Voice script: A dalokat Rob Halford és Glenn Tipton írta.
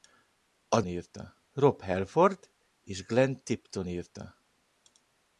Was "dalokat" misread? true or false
true